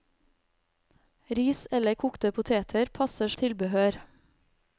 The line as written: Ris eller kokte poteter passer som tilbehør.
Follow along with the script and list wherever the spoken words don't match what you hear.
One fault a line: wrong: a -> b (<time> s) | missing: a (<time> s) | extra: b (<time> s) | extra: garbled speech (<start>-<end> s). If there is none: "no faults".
missing: som (3.3 s)